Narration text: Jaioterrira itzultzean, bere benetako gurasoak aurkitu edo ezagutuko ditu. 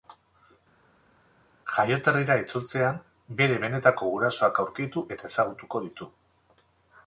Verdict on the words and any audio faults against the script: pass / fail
fail